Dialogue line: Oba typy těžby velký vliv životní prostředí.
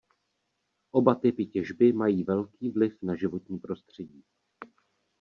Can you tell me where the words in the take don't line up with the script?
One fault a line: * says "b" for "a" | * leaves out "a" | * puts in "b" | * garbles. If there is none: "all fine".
* puts in "mají"
* puts in "na"